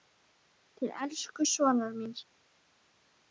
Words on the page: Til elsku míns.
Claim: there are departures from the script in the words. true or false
true